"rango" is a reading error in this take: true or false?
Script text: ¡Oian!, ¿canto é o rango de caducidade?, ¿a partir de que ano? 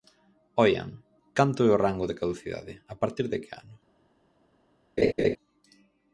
false